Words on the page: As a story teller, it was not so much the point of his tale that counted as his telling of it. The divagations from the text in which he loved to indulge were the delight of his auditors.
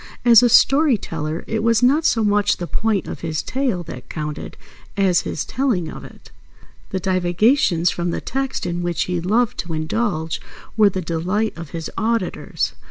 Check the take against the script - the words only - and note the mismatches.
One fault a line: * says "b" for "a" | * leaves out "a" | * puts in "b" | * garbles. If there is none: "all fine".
all fine